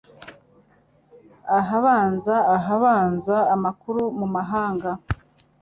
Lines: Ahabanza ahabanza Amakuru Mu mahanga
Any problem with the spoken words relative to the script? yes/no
no